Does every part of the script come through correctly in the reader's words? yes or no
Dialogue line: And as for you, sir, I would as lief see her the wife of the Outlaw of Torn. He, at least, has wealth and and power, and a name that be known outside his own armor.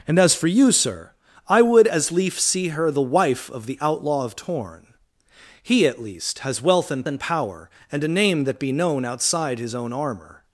yes